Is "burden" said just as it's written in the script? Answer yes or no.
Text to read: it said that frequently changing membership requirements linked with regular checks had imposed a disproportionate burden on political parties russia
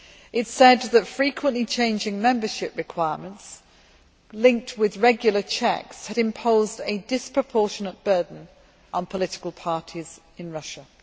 yes